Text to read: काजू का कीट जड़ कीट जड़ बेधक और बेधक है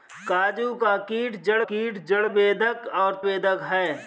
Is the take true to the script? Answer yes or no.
yes